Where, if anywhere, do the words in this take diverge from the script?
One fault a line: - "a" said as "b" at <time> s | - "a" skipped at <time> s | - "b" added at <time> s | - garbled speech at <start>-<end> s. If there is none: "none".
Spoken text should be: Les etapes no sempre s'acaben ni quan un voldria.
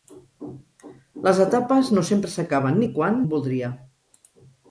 none